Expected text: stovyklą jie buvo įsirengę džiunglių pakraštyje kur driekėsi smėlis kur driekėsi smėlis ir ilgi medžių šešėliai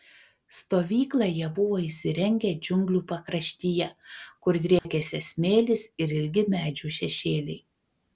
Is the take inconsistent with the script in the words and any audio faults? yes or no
yes